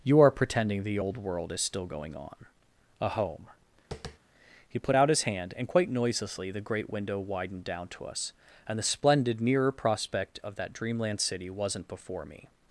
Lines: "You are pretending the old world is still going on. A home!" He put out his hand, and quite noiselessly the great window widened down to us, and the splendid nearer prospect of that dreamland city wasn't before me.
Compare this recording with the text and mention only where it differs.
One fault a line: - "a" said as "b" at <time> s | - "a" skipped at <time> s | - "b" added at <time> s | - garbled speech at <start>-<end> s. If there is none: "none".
none